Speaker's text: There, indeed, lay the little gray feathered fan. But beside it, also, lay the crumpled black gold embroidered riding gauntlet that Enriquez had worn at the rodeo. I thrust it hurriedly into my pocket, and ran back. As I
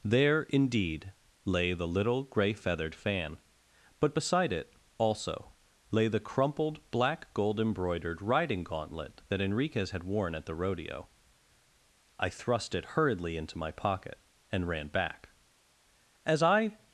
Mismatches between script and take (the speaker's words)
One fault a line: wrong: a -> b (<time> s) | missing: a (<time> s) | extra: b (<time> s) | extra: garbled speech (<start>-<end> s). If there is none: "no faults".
no faults